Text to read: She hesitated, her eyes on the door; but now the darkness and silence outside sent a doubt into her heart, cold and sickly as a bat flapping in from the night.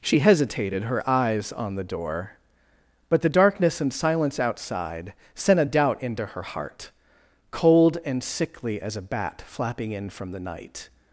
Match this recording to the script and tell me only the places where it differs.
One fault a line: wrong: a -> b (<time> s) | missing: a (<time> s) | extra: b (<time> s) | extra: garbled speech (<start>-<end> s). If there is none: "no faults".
missing: now (3.2 s)